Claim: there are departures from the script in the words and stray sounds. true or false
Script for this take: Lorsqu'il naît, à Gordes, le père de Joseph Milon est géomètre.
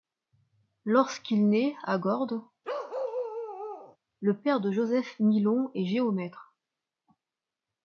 true